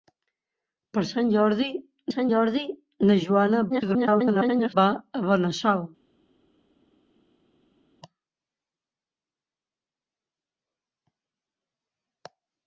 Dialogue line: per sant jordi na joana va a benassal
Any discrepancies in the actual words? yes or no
yes